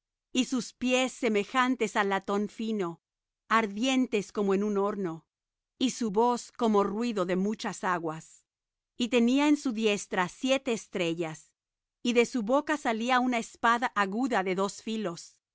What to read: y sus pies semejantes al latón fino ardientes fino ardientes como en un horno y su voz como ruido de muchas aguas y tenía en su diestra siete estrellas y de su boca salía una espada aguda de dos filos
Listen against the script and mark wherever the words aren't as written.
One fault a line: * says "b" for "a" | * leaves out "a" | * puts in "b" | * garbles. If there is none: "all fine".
* leaves out "fino ardientes"